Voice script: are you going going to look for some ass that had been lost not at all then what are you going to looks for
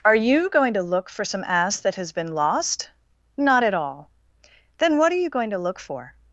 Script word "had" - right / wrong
wrong